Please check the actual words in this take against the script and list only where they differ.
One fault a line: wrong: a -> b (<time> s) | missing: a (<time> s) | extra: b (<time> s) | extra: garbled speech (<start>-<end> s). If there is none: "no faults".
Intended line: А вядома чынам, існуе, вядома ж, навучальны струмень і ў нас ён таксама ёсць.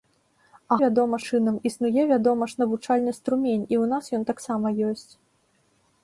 no faults